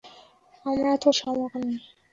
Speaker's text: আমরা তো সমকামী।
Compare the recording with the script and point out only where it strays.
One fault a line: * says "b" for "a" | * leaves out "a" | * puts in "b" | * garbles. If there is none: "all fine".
all fine